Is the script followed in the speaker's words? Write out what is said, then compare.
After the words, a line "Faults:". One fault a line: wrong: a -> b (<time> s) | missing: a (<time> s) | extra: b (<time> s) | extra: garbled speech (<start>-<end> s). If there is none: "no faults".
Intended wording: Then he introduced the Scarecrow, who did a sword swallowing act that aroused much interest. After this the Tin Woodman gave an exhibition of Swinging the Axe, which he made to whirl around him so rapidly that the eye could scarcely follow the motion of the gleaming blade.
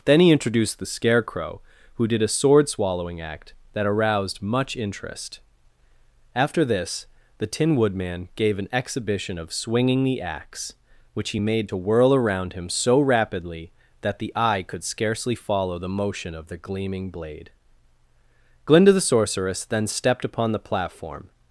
Then he introduced the Scarecrow, who did a sword swallowing act that aroused much interest. After this the Tin Woodman gave an exhibition of Swinging the Axe, which he made to whirl around him so rapidly that the eye could scarcely follow the motion of the gleaming blade. Glinda the Sorceress then stepped upon the platform
Faults:
extra: Glinda the Sorceress then stepped upon the platform (18.6 s)